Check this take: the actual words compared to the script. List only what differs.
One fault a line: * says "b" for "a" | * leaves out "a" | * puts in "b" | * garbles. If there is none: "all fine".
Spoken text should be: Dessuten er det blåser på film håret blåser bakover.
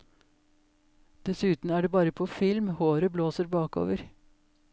* says "bare" for "blåser"